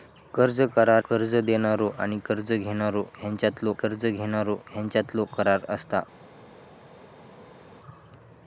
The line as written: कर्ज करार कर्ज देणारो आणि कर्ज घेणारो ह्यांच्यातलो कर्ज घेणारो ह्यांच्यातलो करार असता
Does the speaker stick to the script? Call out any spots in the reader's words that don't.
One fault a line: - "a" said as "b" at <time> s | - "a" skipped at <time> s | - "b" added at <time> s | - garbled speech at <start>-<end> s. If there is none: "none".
none